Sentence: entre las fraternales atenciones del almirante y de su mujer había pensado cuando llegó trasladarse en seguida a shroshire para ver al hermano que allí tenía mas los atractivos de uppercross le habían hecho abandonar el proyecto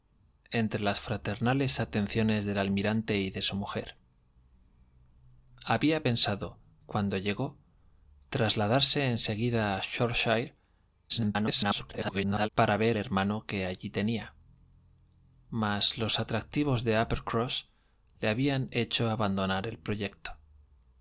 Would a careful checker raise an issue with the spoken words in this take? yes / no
yes